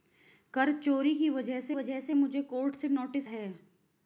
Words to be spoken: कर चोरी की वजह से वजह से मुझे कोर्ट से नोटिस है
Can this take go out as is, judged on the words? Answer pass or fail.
pass